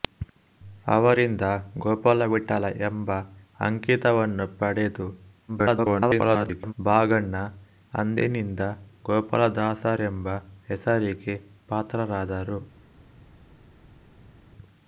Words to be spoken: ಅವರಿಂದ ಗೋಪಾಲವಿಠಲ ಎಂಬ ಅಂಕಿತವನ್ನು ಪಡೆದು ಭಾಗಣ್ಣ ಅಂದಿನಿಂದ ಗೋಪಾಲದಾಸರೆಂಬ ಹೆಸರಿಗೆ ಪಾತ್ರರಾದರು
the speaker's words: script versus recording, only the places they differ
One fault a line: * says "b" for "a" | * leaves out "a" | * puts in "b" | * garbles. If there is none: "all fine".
* garbles